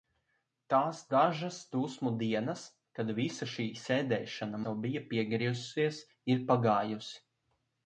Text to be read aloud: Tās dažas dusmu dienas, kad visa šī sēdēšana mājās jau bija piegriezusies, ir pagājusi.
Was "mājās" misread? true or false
true